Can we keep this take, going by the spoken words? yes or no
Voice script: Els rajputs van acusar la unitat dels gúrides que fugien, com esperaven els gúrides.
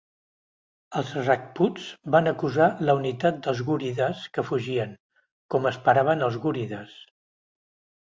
yes